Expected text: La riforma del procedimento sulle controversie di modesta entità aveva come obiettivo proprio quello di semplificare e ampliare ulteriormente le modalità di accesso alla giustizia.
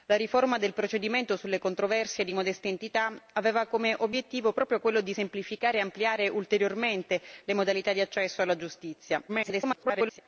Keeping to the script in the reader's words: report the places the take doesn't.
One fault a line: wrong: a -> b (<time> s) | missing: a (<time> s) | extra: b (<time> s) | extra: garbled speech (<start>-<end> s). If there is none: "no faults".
extra: garbled speech (9.3-10.2 s)